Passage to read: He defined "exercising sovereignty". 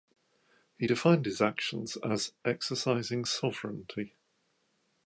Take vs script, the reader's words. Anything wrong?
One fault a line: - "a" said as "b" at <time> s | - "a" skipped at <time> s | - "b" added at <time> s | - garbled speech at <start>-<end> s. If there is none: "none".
- "his actions as" added at 1.3 s